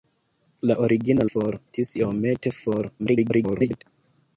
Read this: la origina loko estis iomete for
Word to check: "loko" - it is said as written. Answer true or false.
false